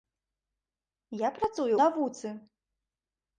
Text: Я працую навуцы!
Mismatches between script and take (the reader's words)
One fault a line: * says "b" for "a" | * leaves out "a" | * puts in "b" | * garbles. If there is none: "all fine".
all fine